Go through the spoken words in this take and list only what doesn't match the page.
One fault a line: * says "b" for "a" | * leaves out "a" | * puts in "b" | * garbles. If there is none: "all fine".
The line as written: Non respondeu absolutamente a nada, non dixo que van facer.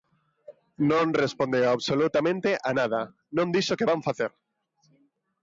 all fine